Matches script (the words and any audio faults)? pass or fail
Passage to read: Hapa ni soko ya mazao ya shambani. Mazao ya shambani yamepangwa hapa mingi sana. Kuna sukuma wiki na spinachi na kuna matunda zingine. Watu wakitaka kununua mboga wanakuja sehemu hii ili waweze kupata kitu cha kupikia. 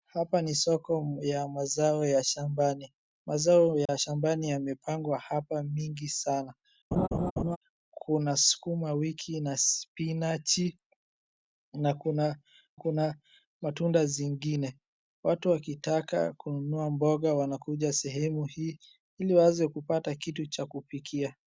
fail